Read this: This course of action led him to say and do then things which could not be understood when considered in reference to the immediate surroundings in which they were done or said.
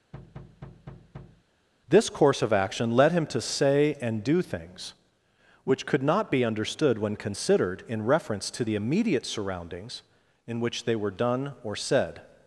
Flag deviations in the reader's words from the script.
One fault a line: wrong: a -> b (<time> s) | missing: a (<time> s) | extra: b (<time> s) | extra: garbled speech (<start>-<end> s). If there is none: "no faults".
missing: then (4.4 s)